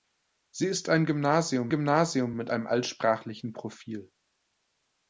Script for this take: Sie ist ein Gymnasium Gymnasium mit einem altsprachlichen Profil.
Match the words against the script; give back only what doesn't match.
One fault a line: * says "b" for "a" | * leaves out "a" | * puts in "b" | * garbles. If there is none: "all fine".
all fine